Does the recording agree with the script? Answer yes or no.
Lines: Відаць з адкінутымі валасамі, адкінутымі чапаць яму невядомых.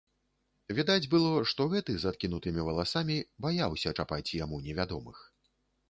no